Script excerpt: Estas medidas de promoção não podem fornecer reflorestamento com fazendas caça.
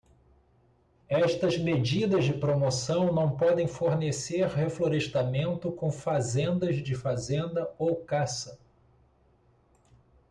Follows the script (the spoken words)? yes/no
no